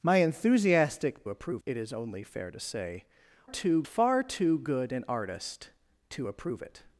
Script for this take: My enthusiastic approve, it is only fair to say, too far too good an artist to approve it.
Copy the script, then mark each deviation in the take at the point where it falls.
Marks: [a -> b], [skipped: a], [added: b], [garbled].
My enthusiastic approve, it is only fair to say, too far too good an artist to approve it.